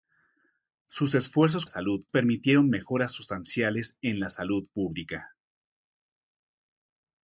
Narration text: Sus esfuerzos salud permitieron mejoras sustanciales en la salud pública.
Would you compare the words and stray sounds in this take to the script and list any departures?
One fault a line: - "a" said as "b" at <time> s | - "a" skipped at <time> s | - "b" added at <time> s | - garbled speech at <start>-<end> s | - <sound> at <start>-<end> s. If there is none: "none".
none